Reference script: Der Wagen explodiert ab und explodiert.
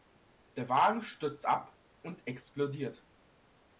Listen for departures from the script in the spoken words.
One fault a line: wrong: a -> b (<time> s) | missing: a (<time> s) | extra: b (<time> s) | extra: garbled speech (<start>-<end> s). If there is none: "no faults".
wrong: explodiert -> stürzt (1.0 s)